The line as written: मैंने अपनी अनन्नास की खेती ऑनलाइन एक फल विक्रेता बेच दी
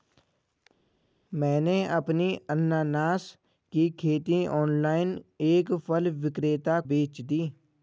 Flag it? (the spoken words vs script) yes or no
no